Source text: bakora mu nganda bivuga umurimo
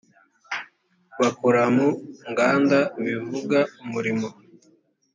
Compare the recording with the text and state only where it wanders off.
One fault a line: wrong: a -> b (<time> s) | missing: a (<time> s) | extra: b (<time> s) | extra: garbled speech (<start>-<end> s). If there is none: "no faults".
no faults